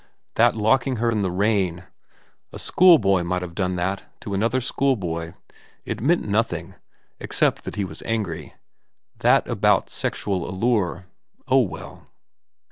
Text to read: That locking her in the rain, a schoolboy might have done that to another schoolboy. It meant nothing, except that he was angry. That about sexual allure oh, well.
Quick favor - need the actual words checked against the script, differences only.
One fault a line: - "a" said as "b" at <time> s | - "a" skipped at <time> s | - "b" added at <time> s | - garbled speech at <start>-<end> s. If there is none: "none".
none